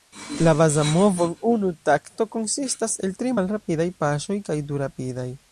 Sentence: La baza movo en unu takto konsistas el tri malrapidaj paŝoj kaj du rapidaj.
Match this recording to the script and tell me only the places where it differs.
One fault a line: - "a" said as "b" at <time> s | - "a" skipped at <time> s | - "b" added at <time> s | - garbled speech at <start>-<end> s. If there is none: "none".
none